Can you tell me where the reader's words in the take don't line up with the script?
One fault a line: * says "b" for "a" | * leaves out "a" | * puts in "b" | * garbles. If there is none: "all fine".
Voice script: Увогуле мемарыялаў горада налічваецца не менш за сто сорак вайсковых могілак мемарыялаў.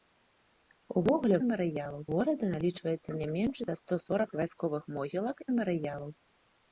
all fine